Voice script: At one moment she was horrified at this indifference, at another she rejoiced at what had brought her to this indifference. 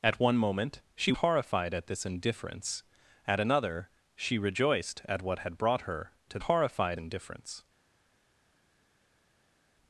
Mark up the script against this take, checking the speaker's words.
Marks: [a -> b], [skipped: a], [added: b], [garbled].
At one moment she [skipped: was] horrified at this indifference, at another she rejoiced at what had brought her to [this -> horrified] indifference.